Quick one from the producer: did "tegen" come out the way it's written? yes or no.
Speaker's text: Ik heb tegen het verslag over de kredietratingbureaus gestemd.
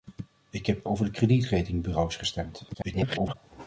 no